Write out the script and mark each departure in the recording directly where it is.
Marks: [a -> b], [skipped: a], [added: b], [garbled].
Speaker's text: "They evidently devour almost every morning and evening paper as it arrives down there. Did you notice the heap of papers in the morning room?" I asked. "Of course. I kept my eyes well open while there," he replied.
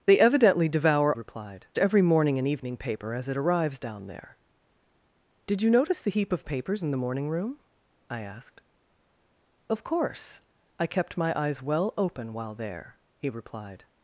"They evidently devour [almost -> replied] every morning and evening paper as it arrives down there. Did you notice the heap of papers in the morning room?" I asked. "Of course. I kept my eyes well open while there," he replied.